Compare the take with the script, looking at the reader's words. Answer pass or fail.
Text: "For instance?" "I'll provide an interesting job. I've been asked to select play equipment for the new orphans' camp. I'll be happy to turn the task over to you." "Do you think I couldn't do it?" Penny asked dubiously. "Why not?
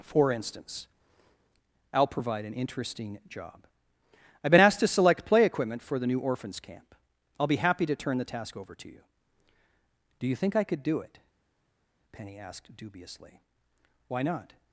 fail